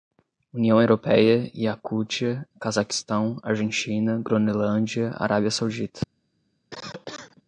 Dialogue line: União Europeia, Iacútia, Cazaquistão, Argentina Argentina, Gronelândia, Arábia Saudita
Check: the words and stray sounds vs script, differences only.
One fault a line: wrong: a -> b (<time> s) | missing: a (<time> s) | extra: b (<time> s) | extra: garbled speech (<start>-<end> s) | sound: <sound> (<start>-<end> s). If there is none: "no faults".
missing: Argentina (4.2 s)
sound: cough (6.7-7.4 s)